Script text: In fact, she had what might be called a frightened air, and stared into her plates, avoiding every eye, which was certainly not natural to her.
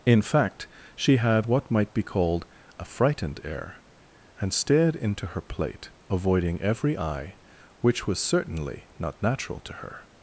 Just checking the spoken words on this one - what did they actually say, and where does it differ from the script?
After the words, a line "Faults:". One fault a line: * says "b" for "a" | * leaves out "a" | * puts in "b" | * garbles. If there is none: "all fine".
In fact, she had what might be called a frightened air, and stared into her plate, avoiding every eye, which was certainly not natural to her.
Faults:
* says "plate" for "plates"